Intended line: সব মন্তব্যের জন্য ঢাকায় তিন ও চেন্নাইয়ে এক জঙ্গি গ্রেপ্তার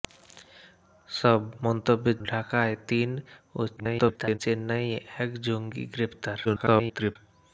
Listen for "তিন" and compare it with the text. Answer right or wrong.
right